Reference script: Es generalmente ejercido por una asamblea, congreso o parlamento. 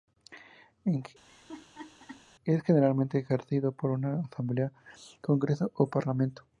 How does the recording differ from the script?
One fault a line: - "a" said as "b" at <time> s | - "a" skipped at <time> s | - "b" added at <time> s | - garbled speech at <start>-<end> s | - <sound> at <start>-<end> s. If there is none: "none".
- laugh at 1.3-2.2 s